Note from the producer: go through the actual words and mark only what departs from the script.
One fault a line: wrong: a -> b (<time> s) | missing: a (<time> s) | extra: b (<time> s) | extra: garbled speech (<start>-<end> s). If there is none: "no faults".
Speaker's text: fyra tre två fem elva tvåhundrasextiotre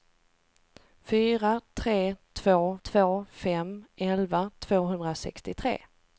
extra: två (2.8 s)